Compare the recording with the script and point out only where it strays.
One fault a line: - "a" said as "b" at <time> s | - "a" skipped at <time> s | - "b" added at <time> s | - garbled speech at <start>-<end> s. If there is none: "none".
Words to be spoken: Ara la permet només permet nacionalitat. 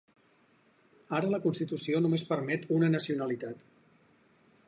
- "permet" said as "constitució" at 1.4 s
- "una" added at 2.8 s